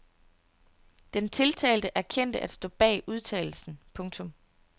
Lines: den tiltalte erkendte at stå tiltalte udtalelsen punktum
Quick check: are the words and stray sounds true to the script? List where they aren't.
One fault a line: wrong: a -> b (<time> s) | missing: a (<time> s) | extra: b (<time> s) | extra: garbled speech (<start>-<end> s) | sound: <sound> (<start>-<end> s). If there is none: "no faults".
wrong: tiltalte -> bag (2.7 s)